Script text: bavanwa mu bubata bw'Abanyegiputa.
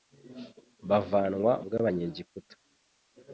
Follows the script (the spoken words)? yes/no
no